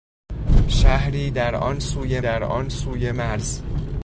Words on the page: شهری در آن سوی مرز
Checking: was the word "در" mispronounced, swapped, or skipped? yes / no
no